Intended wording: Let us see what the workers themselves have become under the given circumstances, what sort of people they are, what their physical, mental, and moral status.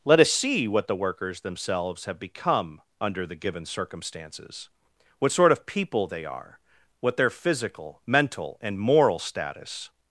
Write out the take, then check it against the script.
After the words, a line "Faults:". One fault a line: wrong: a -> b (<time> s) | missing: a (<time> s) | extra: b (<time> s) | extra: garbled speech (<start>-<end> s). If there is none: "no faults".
Let us see what the workers themselves have become under the given circumstances, what sort of people they are, what their physical, mental, and moral status.
Faults:
no faults